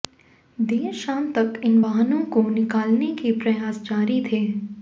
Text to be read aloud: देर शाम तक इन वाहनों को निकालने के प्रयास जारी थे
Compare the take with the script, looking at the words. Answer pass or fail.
pass